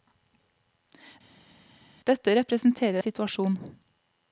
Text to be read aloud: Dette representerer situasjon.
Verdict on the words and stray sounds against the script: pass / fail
pass